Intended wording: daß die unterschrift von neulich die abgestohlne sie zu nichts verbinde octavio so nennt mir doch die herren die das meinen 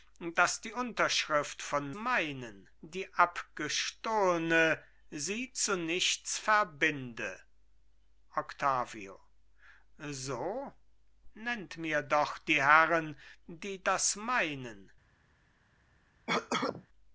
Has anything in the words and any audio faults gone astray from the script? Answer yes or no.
yes